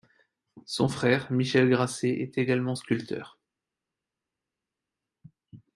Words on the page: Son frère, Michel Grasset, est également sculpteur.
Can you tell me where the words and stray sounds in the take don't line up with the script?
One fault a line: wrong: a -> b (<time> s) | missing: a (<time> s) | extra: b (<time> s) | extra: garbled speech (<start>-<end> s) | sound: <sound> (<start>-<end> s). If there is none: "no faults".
no faults